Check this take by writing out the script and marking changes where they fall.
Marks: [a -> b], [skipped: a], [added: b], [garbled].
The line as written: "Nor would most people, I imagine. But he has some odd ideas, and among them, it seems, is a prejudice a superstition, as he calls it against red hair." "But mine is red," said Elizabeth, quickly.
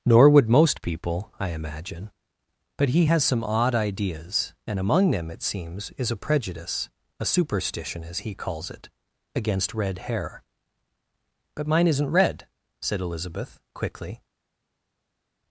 "Nor would most people, I imagine. But he has some odd ideas, and among them, it seems, is a prejudice a superstition, as he calls it against red hair." "But mine [is -> isn't] red," said Elizabeth, quickly.